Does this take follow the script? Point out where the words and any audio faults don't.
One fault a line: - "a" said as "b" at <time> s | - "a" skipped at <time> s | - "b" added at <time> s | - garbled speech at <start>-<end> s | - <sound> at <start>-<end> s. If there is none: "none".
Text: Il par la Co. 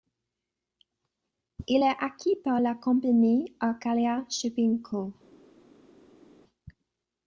- "est acquis" added at 1.8 s
- "compagnie Arcalia Shipping" added at 2.7 s